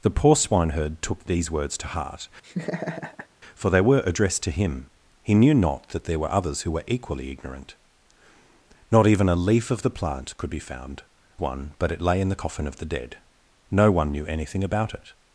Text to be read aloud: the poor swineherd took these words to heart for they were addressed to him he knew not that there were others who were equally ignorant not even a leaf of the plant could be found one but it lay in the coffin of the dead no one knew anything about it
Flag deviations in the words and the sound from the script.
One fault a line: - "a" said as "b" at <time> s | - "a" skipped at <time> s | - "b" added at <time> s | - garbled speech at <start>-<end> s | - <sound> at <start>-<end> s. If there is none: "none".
- laugh at 2.4-3.3 s